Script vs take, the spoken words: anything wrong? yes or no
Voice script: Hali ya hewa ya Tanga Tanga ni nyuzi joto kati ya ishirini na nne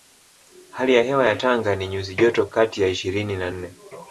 yes